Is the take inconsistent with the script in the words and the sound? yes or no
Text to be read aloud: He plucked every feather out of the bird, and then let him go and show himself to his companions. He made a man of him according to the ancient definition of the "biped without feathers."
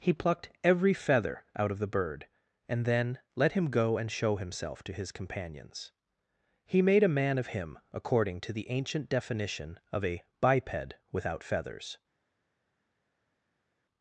yes